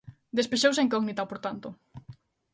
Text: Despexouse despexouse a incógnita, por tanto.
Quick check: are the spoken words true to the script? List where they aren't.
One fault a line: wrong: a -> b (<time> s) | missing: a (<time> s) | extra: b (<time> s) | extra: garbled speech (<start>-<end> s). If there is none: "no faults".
missing: despexouse (0.8 s)